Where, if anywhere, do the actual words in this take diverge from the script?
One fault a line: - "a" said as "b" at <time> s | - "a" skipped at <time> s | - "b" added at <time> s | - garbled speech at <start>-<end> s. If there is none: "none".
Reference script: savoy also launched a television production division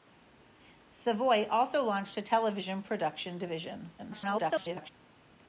- garbled speech at 4.0-4.9 s